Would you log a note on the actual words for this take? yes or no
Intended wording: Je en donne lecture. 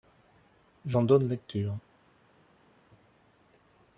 no